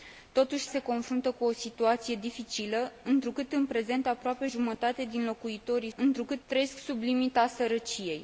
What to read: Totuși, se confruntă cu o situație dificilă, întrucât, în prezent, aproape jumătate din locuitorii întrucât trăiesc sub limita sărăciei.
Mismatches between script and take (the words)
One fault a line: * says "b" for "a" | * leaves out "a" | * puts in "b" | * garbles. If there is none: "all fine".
all fine